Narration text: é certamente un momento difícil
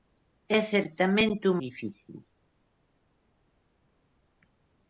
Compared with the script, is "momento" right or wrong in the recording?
wrong